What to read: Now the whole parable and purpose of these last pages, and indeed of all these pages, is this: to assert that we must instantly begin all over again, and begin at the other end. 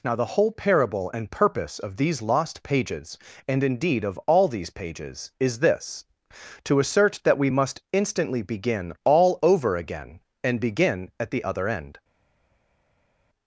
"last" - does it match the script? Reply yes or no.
no